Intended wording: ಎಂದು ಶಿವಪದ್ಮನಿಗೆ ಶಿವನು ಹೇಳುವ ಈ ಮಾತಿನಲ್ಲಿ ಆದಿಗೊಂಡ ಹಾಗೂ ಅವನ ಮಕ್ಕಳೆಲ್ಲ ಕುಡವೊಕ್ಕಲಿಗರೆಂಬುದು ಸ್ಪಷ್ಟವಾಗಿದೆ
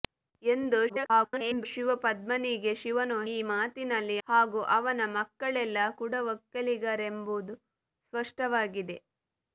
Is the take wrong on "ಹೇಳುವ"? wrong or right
wrong